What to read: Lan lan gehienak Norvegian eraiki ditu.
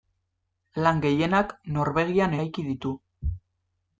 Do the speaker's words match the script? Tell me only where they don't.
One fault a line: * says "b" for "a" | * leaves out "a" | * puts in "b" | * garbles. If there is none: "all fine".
* leaves out "lan"